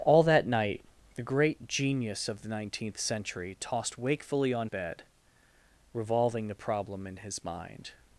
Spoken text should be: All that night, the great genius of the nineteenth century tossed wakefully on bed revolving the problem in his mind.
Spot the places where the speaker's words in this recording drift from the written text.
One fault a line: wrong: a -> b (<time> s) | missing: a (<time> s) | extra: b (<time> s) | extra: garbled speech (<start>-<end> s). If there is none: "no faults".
no faults